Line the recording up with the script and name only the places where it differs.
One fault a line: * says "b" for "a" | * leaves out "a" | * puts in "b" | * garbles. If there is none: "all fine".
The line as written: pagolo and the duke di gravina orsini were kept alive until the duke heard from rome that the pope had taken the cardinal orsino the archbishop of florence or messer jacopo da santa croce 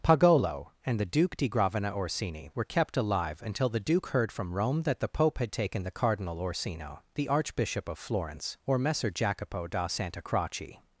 all fine